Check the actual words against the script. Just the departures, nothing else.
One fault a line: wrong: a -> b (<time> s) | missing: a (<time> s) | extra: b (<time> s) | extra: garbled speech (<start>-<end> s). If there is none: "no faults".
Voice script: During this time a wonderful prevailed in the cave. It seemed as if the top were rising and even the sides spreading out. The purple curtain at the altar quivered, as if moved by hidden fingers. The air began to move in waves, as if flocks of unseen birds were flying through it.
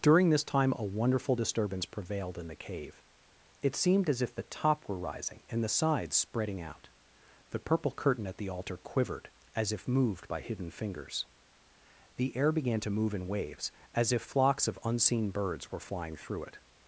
extra: disturbance (1.3 s)
missing: even (5.6 s)